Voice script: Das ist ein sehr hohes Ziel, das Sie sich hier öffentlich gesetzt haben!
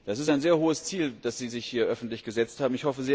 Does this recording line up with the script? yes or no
yes